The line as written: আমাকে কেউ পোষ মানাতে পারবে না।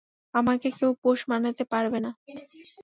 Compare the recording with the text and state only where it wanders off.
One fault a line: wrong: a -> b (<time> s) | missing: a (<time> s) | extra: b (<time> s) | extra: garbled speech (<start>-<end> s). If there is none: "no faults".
no faults